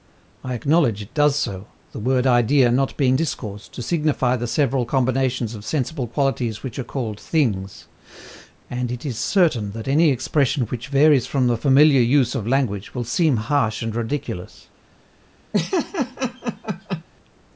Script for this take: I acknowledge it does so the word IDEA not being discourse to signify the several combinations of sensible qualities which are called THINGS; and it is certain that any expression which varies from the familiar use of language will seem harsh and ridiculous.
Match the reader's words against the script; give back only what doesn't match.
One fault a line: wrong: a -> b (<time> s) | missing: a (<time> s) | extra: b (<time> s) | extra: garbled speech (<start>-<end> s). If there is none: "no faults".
no faults